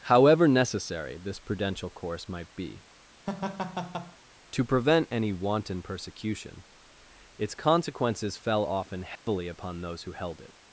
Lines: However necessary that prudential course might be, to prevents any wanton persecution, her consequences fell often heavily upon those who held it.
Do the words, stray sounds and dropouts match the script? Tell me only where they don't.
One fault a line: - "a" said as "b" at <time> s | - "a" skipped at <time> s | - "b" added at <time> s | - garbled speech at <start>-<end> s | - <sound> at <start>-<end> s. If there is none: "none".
- "that" said as "this" at 1.2 s
- laugh at 3.3-4.2 s
- "prevents" said as "prevent" at 4.6 s
- "her" said as "its" at 7.4 s
- dropout at 9.2-9.3 s